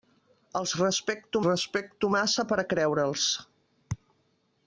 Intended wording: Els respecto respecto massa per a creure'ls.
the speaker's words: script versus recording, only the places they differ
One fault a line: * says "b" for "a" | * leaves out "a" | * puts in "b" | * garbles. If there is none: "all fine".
all fine